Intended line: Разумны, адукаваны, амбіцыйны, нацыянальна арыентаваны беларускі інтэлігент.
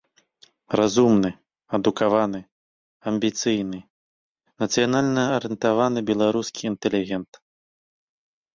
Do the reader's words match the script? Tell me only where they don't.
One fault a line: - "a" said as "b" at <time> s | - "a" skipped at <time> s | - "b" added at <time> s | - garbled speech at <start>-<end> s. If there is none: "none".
none